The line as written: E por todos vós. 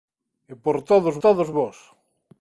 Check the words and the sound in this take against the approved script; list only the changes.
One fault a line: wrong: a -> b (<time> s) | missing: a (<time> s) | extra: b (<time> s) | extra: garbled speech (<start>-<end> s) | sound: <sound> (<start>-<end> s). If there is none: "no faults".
extra: todos (1.2 s)